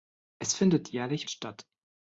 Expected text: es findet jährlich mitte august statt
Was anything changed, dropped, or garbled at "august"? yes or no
yes